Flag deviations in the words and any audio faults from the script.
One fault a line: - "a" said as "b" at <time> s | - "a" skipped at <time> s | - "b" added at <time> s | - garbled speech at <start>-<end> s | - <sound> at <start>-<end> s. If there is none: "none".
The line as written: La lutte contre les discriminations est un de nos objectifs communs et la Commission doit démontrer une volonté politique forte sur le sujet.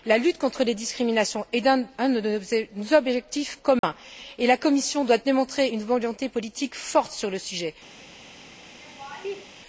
- dropout at 3.8-3.8 s
- laugh at 8.8-9.4 s